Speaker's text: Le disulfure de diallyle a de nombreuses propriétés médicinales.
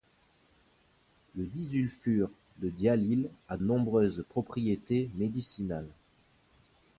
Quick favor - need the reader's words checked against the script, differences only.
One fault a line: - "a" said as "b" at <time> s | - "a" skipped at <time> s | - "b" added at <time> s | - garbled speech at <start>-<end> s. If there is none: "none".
- "de" skipped at 3.6 s